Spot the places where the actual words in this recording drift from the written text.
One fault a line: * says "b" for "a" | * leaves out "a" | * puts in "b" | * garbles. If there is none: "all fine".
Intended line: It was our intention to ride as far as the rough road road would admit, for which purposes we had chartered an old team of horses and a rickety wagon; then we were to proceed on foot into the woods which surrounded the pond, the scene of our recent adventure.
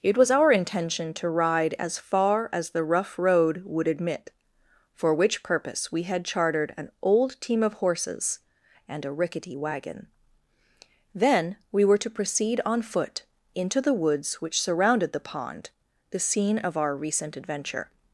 * leaves out "road"
* says "purpose" for "purposes"